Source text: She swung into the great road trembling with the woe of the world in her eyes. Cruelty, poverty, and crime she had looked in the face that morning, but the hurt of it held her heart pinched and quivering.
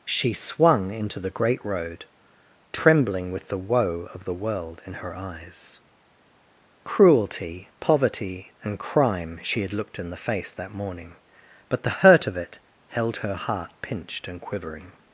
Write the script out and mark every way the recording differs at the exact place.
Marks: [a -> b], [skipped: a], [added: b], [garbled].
She swung into the great road trembling with the woe of the world in her eyes. Cruelty, poverty, and crime she had looked in the face that morning, but the hurt of it held her heart pinched and quivering.